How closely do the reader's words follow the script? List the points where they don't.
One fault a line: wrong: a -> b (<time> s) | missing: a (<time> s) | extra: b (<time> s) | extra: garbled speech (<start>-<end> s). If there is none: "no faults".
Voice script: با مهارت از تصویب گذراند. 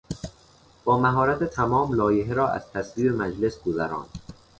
extra: تمام لایحه را (1.4 s)
extra: مجلس (3.1 s)